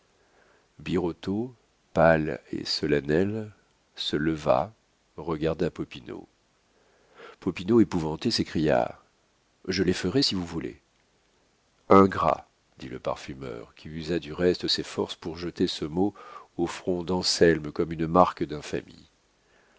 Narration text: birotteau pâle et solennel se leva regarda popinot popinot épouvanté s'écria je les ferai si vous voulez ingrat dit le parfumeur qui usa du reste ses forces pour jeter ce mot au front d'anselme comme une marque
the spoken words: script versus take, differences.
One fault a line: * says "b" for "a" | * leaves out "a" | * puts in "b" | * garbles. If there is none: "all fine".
all fine